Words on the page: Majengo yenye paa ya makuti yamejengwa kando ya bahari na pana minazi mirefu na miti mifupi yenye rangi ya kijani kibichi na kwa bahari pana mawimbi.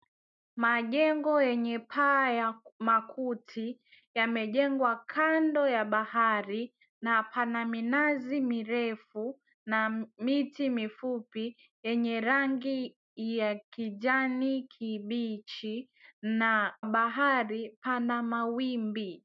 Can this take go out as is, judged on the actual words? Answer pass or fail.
fail